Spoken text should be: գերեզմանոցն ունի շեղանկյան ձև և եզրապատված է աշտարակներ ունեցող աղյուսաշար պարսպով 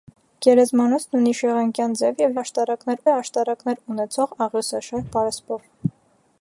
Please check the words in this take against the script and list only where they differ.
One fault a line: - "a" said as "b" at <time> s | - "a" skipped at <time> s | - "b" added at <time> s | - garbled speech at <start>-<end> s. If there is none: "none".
- "եզրապատված" said as "աշտարակներ" at 2.4 s